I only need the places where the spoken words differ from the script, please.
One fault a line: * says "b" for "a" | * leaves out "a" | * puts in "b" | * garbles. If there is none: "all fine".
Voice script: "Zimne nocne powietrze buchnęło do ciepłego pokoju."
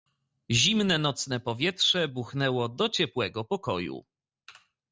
all fine